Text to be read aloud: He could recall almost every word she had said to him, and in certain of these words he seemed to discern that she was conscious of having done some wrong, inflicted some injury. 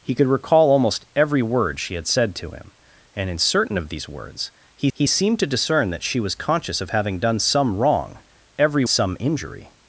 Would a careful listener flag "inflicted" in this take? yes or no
yes